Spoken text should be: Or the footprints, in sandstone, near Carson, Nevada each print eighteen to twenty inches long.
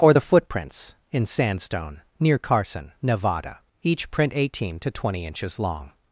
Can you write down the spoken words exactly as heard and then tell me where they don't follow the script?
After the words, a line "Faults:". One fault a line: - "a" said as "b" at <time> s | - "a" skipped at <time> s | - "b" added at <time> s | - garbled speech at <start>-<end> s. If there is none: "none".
Or the footprints, in sandstone, near Carson, Nevada each print eighteen to twenty inches long.
Faults:
none